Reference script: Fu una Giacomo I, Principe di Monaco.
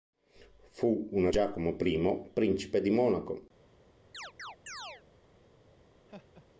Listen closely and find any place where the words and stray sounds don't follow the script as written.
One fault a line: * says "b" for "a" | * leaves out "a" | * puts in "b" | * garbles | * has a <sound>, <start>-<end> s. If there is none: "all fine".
* has a chirp, 4.1-5.0 s
* has a laugh, 6.1-6.5 s